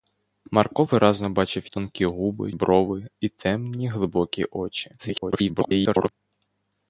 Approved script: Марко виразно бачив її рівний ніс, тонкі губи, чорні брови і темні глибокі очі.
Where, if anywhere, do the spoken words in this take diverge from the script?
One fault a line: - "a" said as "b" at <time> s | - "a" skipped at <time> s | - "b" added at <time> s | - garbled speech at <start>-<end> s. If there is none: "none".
- "її рівний ніс" skipped at 1.7 s
- "чорні" skipped at 2.5 s
- garbled speech at 5.0-6.1 s